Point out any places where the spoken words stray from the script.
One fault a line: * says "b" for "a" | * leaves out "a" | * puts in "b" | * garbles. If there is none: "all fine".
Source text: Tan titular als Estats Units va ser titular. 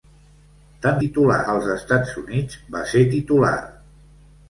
all fine